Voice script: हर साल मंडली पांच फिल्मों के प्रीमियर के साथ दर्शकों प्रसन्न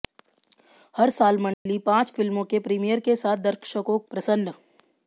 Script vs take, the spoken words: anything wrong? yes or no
no